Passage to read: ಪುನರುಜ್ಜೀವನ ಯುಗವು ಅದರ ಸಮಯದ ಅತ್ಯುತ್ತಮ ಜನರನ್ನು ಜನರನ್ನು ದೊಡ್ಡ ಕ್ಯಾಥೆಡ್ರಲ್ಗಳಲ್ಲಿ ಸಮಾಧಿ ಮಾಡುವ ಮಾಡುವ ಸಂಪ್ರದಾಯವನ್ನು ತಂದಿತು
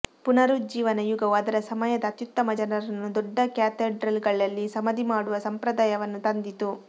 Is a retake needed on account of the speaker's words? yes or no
yes